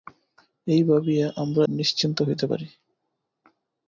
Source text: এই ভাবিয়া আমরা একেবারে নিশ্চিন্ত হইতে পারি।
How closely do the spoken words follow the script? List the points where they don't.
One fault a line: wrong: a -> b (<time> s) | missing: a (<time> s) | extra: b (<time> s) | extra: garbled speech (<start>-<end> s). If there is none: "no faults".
missing: একেবারে (1.6 s)